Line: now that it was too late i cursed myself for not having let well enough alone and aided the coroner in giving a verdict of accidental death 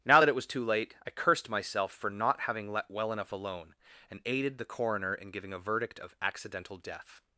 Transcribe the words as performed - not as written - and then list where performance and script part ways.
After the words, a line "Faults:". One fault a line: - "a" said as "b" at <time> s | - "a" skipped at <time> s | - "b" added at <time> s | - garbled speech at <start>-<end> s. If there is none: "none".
now that it was too late i cursed myself for not having let well enough alone and aided the coroner in giving a verdict of accidental death
Faults:
none